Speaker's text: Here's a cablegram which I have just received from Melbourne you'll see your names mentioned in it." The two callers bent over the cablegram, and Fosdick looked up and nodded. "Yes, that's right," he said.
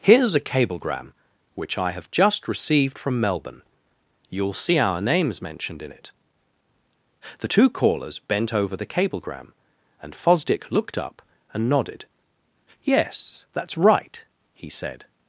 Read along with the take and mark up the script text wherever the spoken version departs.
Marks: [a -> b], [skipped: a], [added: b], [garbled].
Here's a cablegram which I have just received from Melbourne you'll see [your -> our] names mentioned in it." The two callers bent over the cablegram, and Fosdick looked up and nodded. "Yes, that's right," he said.